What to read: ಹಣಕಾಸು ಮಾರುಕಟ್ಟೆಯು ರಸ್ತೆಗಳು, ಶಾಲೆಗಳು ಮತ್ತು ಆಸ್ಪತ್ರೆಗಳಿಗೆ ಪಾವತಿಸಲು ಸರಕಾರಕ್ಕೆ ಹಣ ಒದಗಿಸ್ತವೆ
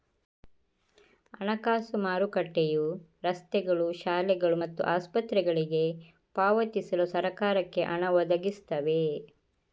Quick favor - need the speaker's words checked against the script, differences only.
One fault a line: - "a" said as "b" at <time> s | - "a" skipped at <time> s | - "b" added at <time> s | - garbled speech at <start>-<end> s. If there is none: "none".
none